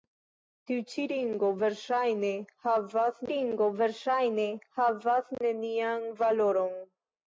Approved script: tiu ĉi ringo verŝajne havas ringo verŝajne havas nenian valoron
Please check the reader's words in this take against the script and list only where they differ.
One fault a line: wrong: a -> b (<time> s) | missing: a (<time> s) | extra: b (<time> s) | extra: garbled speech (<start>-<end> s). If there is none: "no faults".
no faults